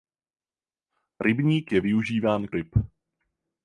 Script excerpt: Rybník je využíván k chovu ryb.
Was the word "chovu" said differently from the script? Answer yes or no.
yes